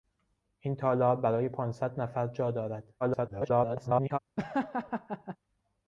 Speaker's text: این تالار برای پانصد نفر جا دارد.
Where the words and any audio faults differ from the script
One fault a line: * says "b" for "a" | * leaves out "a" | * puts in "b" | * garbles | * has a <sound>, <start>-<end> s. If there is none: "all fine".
* garbles
* has a laugh, 4.4-5.4 s